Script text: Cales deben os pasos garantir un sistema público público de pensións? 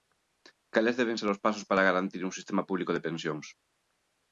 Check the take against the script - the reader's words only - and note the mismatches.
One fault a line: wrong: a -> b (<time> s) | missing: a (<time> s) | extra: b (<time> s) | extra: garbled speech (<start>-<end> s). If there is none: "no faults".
extra: ser (1.2 s)
extra: para (1.7 s)
missing: público (2.9 s)